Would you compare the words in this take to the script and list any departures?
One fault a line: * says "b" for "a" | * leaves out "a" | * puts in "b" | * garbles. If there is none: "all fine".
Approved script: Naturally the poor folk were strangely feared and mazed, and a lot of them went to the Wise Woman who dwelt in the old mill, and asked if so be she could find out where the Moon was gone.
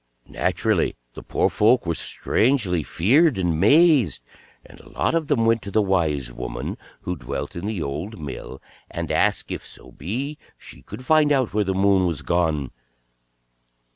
all fine